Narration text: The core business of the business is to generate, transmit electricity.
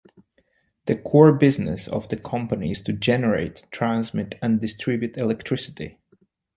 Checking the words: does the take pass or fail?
fail